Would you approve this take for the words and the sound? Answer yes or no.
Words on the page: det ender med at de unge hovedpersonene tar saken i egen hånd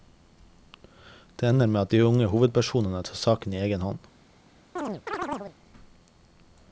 no